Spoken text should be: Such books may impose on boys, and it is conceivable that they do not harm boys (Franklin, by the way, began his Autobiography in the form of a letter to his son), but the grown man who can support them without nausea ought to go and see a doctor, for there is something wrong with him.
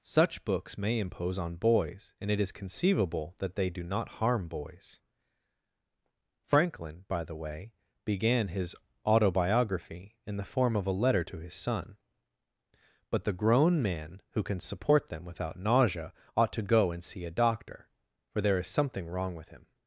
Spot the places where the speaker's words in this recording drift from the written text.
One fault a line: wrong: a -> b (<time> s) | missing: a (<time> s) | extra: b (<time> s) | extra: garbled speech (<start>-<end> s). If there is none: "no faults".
no faults